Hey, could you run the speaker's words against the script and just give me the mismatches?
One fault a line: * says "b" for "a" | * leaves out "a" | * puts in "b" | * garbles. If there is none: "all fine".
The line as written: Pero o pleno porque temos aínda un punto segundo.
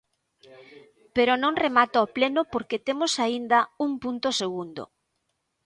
* puts in "non remata"